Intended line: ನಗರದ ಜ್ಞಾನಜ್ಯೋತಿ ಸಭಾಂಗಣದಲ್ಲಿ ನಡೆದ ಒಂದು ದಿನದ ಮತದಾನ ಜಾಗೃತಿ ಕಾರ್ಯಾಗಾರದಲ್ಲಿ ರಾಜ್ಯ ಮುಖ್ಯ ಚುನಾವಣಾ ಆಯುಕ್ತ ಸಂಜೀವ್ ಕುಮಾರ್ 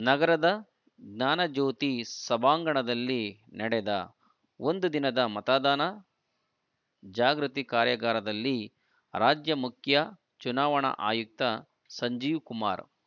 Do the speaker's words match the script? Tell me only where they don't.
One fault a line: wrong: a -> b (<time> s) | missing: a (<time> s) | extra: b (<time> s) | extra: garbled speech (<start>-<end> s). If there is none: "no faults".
no faults